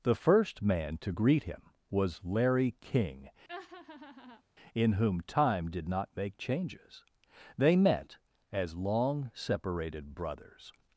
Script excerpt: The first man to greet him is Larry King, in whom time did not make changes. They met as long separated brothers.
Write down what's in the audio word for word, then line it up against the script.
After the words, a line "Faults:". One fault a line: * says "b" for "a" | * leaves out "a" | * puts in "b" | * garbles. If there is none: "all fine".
The first man to greet him was Larry King, in whom time did not make changes. They met as long separated brothers.
Faults:
* says "was" for "is"